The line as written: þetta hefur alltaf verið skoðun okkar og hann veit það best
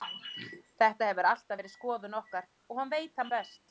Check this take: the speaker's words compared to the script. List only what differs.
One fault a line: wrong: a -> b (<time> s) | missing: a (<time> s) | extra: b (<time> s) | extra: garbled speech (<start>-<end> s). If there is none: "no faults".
no faults